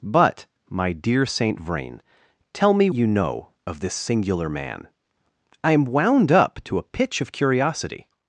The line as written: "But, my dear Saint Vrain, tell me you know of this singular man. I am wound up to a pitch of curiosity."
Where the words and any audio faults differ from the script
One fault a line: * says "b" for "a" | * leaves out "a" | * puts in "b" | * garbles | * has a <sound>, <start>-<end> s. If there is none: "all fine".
all fine